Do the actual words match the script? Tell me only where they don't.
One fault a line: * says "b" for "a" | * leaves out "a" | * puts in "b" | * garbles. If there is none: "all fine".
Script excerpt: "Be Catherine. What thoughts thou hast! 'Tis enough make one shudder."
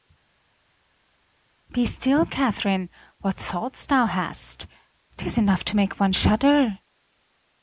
* puts in "still"
* puts in "to"